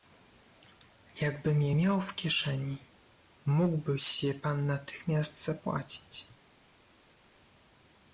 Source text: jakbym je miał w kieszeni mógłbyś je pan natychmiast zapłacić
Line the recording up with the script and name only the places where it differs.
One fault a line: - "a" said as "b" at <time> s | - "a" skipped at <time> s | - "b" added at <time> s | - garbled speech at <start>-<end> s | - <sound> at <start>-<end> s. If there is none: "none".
none